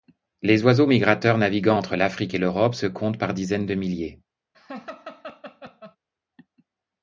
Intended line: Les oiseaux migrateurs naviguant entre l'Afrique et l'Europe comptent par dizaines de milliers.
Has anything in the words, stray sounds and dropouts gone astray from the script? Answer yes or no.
yes